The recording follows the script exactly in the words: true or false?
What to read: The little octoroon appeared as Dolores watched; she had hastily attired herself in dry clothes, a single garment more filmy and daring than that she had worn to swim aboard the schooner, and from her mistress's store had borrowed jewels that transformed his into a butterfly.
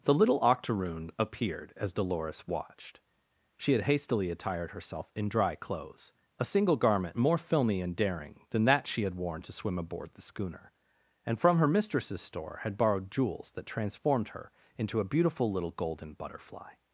false